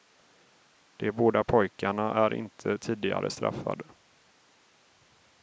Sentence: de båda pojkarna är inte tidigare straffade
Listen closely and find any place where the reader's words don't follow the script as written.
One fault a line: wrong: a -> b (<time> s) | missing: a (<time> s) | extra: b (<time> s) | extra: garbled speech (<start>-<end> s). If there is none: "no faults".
no faults